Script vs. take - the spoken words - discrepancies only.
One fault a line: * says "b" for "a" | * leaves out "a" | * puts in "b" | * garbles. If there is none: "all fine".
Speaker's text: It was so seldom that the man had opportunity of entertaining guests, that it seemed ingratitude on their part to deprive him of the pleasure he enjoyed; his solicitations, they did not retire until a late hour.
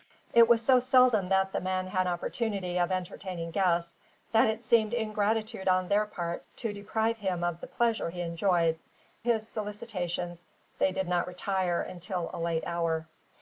all fine